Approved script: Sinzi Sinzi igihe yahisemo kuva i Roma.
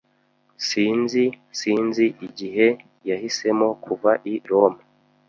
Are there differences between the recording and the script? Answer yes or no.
no